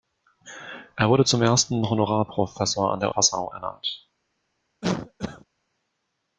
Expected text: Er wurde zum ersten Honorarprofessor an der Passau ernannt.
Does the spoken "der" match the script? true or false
true